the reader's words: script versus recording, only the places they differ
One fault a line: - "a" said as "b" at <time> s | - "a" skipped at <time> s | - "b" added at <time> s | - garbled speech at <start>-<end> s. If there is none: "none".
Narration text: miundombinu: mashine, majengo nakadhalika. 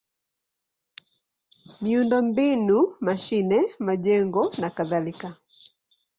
none